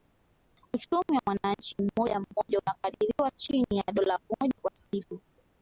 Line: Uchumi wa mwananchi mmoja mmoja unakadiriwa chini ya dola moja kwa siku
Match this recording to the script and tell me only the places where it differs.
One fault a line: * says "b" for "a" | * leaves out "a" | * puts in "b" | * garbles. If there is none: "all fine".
all fine